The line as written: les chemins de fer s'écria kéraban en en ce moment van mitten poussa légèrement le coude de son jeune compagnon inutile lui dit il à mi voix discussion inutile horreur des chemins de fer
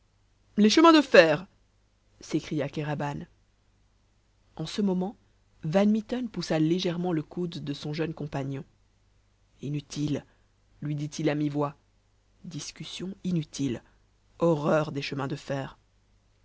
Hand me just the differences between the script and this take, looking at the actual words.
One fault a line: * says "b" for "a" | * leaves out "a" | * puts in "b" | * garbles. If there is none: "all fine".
* leaves out "en"